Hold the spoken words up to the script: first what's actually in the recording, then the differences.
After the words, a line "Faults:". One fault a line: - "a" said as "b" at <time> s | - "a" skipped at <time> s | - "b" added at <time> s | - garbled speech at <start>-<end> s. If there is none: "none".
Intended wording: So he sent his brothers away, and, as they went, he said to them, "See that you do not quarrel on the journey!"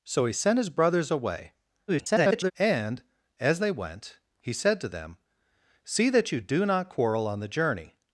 So he sent his brothers away, [garbled] and, as they went, he said to them, "See that you do not quarrel on the journey!"
Faults:
- garbled speech at 1.9-2.5 s